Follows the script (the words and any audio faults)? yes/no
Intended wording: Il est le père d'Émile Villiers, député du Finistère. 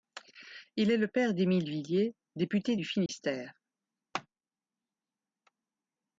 no